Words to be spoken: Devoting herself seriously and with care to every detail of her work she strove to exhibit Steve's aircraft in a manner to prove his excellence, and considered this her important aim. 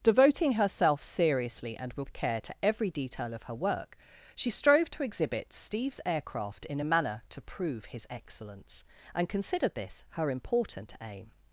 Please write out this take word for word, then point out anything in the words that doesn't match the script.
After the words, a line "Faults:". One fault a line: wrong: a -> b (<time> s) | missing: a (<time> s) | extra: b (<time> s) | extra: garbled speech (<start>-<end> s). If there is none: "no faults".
Devoting herself seriously and with care to every detail of her work she strove to exhibit Steve's aircraft in a manner to prove his excellence, and considered this her important aim.
Faults:
no faults